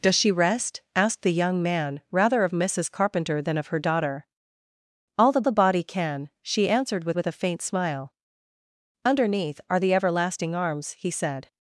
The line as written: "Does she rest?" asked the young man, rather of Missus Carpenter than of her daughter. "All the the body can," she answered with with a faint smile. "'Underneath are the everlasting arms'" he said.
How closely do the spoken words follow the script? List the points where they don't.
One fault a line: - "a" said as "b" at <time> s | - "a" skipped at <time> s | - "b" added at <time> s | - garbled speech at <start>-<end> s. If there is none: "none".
none